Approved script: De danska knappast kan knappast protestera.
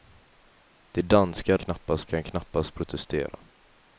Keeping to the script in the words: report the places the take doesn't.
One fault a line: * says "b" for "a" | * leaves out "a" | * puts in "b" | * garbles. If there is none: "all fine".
all fine